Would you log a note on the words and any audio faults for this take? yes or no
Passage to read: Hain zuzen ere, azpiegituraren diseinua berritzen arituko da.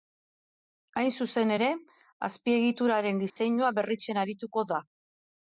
yes